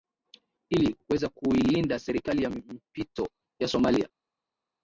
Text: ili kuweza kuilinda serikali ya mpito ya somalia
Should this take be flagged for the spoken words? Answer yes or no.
no